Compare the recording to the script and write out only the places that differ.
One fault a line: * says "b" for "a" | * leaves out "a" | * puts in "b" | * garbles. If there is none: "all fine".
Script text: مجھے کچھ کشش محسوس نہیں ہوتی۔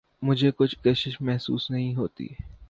all fine